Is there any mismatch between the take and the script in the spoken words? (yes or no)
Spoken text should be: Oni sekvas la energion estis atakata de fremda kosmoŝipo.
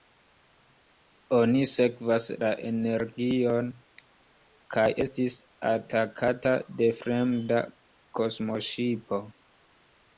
yes